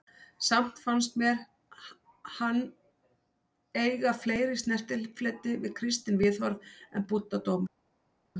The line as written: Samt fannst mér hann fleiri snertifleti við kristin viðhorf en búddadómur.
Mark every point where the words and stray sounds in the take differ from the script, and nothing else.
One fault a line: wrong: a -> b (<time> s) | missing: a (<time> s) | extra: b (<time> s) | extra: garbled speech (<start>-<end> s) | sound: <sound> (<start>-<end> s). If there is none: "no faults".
extra: eiga (3.7 s)